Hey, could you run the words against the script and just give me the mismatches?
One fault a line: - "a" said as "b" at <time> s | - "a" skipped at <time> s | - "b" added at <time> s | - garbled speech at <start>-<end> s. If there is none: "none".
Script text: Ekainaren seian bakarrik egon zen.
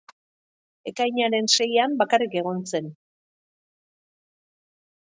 none